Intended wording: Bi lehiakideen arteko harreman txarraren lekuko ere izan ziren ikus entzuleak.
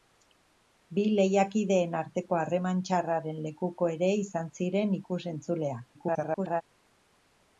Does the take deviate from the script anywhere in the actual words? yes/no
yes